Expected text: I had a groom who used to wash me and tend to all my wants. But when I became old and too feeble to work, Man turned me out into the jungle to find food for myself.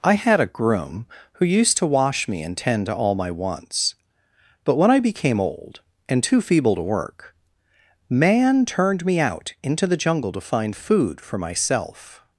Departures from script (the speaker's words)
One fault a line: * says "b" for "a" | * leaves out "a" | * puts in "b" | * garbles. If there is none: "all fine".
all fine